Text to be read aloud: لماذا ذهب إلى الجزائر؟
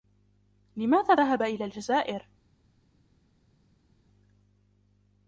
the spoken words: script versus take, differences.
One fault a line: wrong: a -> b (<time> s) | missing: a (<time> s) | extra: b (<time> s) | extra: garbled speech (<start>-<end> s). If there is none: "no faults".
no faults